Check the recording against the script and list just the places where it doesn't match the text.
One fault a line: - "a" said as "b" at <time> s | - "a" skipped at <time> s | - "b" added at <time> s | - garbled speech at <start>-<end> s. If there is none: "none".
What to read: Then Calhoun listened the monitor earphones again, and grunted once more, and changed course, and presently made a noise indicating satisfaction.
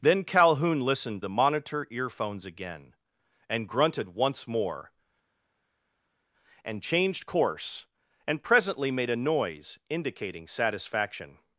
none